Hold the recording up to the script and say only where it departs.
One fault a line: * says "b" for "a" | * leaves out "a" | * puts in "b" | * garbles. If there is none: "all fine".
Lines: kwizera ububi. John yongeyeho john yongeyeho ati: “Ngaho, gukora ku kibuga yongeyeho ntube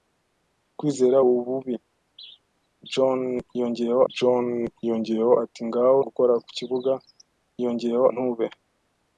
all fine